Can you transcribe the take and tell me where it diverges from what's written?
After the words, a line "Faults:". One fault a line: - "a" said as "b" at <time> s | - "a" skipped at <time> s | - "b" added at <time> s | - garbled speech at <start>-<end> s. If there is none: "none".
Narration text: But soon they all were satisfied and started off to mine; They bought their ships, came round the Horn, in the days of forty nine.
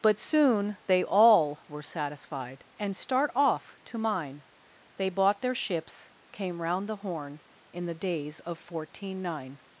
But soon they all were satisfied and start off to mine; They bought their ships, came round the Horn, in the days of fourteen nine.
Faults:
- "started" said as "start" at 3.0 s
- "forty" said as "fourteen" at 8.6 s